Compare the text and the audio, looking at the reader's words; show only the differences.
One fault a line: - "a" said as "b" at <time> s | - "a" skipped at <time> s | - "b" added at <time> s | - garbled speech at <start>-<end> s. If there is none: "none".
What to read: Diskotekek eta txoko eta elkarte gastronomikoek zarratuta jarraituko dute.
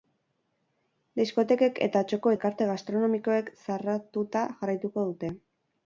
- "eta" skipped at 2.3 s